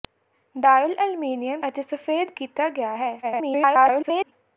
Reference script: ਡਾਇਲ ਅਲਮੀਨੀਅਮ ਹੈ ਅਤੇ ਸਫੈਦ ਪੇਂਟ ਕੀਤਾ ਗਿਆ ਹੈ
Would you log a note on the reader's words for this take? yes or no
yes